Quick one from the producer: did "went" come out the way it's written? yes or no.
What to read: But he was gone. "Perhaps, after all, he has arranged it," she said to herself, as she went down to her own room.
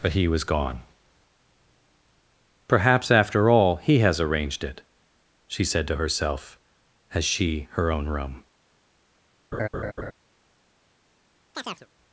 no